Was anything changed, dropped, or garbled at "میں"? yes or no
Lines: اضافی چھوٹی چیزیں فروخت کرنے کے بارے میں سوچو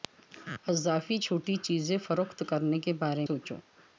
yes